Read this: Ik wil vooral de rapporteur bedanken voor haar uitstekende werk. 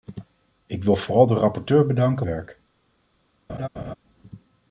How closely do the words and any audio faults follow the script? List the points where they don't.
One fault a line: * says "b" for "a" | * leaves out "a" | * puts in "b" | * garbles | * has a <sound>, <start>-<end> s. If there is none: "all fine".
* leaves out "voor haar uitstekende"
* has a laugh, 3.5-4.0 s